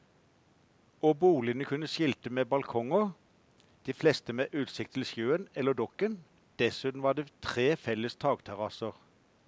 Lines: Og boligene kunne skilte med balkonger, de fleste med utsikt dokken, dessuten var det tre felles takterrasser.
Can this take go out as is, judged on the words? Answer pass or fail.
fail